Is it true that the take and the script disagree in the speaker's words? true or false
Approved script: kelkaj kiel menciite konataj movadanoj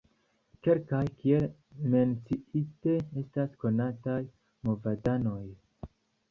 true